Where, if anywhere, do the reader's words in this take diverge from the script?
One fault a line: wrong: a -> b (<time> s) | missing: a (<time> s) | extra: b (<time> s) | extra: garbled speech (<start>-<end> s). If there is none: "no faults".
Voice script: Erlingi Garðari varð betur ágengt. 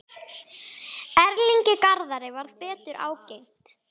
no faults